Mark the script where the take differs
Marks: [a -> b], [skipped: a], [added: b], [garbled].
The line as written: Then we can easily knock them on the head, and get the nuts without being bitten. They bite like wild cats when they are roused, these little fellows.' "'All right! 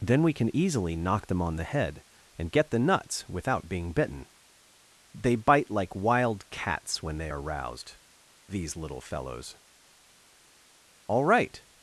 Then we can easily knock them on the head, and get the nuts without being bitten. They bite like wild cats when they are roused, these little fellows.' "'All right!